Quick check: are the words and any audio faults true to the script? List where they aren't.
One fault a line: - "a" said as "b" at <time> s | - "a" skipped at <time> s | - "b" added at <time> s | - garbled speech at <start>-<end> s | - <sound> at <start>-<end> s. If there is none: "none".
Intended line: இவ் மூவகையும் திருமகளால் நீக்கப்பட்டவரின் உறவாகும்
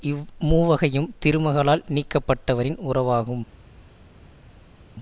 none